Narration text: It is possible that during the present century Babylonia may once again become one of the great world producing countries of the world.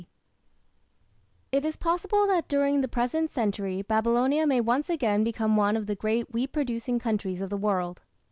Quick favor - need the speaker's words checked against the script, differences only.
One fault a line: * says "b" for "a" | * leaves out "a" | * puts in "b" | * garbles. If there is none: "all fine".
* says "wheat" for "world"